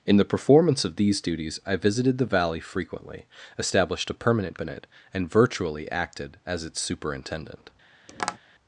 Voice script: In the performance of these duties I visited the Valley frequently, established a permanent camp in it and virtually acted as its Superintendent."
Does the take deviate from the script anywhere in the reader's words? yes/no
yes